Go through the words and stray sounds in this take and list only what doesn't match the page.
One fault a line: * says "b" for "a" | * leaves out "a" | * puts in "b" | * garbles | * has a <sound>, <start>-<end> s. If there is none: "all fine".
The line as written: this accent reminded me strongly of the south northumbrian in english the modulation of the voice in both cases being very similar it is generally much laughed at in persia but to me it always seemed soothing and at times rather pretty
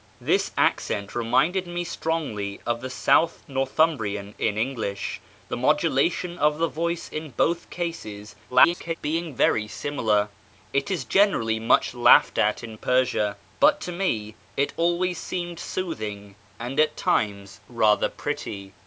* garbles